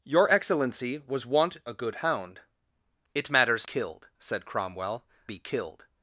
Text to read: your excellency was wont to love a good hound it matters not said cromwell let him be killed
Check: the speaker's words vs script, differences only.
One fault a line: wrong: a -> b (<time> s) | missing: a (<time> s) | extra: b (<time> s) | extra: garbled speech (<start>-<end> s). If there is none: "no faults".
missing: to love (1.6 s)
wrong: not -> killed (3.6 s)
missing: let him (5.0 s)